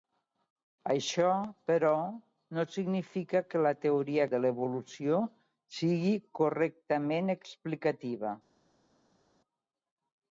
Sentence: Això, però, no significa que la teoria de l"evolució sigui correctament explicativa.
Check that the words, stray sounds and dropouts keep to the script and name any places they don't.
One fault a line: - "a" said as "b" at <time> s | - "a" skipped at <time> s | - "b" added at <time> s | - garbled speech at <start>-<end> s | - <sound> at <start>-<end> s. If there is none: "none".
none